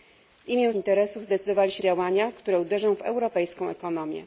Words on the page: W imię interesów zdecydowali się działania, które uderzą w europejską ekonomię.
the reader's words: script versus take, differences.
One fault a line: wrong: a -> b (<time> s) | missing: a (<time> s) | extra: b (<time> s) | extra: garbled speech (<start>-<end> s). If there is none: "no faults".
no faults